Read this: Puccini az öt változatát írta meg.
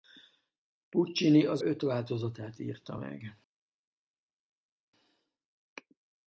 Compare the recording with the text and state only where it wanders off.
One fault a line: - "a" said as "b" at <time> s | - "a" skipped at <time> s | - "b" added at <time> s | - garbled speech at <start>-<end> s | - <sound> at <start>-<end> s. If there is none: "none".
none